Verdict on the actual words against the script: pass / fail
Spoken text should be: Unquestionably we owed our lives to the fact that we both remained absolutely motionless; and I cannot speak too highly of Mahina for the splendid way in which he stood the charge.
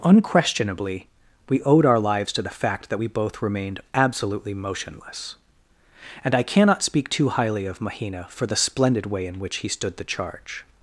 pass